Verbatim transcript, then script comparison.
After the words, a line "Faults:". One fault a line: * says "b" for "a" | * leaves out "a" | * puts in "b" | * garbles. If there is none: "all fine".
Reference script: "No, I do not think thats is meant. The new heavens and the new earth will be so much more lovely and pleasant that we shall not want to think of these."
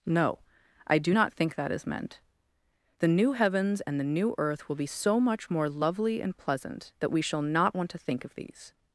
"No, I do not think that is meant. The new heavens and the new earth will be so much more lovely and pleasant that we shall not want to think of these."
Faults:
* says "that" for "thats"